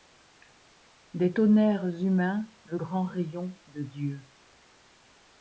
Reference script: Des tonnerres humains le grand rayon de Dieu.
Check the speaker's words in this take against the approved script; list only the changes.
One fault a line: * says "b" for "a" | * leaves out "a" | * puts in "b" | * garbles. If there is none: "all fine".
all fine